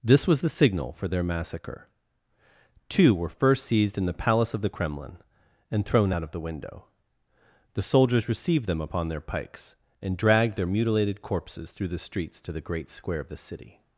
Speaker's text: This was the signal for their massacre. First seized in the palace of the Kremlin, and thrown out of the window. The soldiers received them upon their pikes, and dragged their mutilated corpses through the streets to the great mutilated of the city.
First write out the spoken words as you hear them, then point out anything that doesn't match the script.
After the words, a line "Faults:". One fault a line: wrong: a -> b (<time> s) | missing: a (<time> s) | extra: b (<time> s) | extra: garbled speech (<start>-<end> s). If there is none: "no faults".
This was the signal for their massacre. Two were first seized in the palace of the Kremlin, and thrown out of the window. The soldiers received them upon their pikes, and dragged their mutilated corpses through the streets to the great square of the city.
Faults:
extra: Two were (2.9 s)
wrong: mutilated -> square (12.9 s)